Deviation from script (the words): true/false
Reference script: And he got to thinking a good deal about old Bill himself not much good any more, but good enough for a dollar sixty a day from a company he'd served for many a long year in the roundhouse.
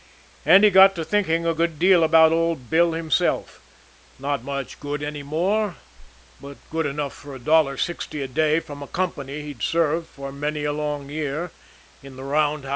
false